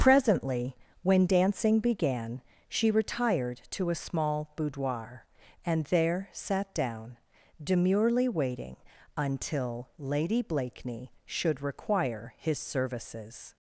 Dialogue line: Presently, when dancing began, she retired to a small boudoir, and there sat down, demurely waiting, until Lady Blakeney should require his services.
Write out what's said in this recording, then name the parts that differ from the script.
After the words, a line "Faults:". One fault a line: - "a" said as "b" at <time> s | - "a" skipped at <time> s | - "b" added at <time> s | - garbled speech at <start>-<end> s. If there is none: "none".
Presently, when dancing began, she retired to a small boudoir, and there sat down, demurely waiting, until Lady Blakeney should require his services.
Faults:
none